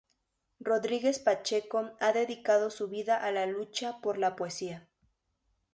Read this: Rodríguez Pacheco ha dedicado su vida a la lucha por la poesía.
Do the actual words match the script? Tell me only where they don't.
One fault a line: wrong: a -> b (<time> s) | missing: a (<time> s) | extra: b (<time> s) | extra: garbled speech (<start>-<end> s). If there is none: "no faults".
no faults